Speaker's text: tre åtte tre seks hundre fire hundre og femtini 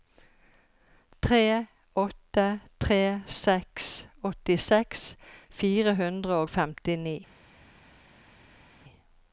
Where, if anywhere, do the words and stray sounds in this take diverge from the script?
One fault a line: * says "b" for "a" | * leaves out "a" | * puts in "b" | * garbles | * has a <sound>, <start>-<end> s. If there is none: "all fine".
* says "åttiseks" for "hundre"